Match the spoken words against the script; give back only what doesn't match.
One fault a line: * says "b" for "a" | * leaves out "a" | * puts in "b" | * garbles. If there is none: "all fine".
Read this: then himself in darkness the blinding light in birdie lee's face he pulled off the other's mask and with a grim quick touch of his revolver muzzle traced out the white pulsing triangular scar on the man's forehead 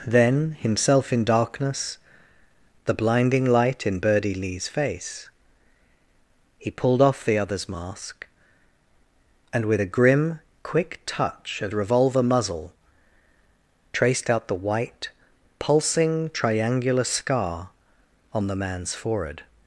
* leaves out "his"